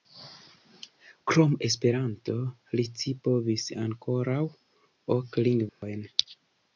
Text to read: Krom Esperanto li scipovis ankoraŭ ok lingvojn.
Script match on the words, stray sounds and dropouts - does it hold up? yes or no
no